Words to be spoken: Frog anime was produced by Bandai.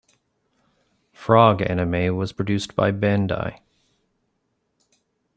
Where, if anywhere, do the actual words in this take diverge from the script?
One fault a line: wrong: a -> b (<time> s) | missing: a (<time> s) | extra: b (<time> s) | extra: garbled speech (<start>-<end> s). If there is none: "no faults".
no faults